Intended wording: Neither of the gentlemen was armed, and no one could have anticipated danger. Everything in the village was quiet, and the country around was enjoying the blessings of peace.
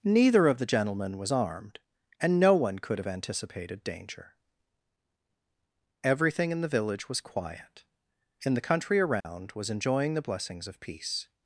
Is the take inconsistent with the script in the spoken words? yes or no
no